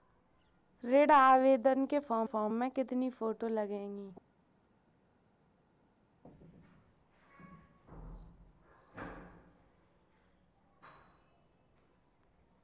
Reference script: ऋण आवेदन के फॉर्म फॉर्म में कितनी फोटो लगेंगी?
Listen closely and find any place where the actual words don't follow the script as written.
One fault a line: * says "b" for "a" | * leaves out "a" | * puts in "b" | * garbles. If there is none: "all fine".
all fine